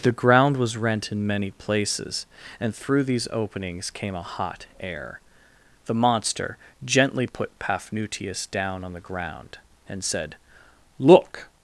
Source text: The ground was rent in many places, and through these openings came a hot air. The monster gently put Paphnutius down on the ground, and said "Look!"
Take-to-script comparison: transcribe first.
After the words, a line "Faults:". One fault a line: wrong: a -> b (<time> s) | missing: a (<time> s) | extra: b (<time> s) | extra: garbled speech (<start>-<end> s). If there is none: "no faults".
The ground was rent in many places, and through these openings came a hot air. The monster gently put Paphnutius down on the ground, and said "Look!"
Faults:
no faults